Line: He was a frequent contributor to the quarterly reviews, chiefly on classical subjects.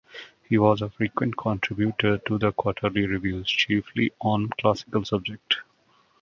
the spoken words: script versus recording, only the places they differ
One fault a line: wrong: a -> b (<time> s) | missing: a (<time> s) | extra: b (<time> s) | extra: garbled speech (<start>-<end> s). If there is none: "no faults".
no faults